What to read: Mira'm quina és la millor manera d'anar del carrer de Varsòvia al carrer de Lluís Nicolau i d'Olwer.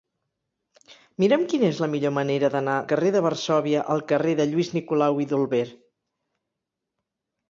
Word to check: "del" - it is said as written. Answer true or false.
false